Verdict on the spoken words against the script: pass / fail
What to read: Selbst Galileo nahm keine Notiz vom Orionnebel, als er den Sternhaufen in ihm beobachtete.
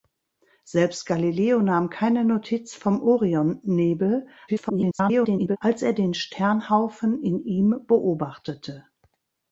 fail